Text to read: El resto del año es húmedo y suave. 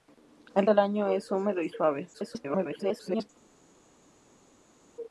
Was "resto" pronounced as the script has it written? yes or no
no